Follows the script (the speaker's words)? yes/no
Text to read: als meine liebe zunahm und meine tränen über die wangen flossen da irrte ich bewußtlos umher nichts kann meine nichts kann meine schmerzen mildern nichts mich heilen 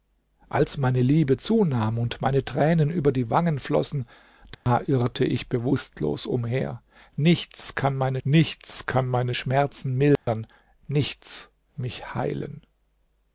yes